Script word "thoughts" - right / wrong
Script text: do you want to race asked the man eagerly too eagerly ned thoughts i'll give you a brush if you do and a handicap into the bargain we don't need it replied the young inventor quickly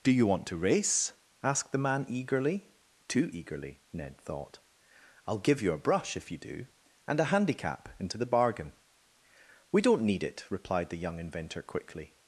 wrong